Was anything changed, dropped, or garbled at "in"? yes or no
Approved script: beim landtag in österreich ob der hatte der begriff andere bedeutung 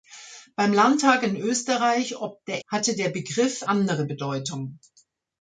no